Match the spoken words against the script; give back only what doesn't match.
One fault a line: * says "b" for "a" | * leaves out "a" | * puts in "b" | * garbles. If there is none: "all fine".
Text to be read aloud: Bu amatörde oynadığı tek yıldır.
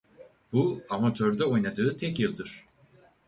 all fine